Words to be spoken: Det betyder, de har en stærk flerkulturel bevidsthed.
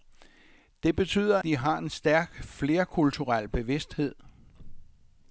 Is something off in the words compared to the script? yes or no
no